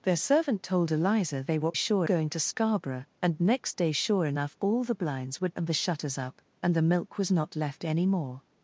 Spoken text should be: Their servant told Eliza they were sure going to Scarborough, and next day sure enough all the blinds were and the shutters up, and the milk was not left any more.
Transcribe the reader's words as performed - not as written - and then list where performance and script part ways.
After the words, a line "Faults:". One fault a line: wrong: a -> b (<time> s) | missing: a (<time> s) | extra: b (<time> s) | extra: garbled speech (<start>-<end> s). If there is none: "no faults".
Their servant told Eliza they were sure going to Scarborough, and next day sure enough all the blinds were and the shutters up, and the milk was not left any more.
Faults:
no faults